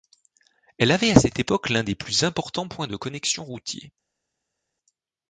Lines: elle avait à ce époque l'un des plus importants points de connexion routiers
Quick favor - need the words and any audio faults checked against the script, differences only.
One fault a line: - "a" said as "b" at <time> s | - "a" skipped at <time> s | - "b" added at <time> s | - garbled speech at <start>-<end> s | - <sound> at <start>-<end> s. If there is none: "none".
- "ce" said as "cette" at 1.2 s